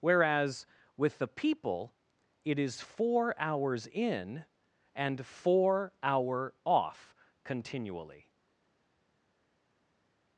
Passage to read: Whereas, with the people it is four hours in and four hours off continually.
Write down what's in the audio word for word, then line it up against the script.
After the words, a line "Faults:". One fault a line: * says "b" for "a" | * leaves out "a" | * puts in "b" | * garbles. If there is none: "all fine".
Whereas, with the people it is four hours in and four hour off continually.
Faults:
* says "hour" for "hours"